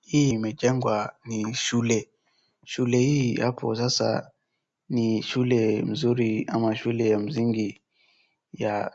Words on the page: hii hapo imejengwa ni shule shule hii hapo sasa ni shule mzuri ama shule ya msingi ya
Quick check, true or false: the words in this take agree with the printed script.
false